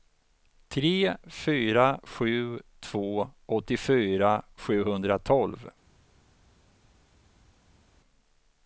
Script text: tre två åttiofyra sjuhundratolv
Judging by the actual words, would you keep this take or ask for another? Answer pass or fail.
fail